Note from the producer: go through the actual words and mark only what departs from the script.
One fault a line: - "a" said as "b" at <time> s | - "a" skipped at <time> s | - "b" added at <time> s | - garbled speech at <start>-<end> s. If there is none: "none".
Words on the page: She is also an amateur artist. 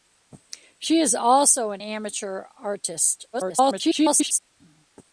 - garbled speech at 3.3-4.4 s